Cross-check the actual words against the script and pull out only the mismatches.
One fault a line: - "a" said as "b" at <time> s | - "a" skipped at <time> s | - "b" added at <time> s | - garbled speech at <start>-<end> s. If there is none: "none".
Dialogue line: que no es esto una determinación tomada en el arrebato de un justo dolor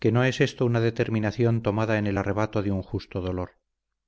none